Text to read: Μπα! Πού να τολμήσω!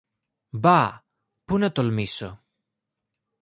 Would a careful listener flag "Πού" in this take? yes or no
no